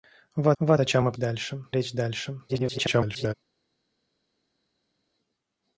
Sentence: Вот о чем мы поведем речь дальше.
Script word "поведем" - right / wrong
wrong